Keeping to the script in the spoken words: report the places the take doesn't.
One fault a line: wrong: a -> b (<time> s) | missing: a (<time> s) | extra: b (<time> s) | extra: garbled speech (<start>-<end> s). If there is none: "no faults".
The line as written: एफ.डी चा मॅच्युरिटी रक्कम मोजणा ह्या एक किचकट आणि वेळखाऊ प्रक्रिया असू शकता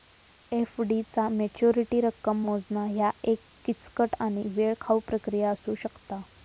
no faults